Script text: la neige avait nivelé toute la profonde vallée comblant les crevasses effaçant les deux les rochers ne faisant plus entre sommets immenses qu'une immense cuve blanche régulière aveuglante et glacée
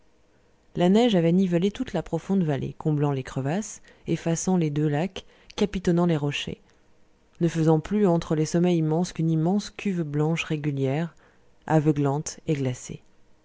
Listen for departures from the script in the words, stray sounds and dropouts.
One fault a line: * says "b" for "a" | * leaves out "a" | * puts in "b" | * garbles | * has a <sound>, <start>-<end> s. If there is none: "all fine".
* puts in "lacs capitonnant"
* puts in "les"